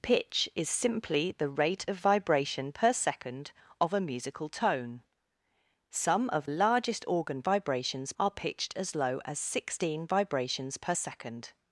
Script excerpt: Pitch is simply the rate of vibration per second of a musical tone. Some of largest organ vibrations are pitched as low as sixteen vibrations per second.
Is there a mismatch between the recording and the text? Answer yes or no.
no